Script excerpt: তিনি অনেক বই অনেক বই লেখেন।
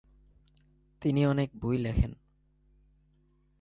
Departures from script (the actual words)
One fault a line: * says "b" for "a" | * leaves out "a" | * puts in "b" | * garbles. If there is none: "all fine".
* leaves out "অনেক বই"